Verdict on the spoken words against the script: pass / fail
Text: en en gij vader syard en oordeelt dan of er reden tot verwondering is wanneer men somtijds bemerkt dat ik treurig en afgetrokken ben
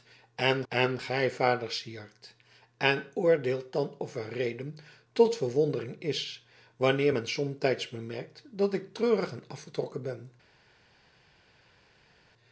pass